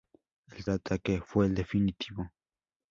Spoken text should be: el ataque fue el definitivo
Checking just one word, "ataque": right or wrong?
right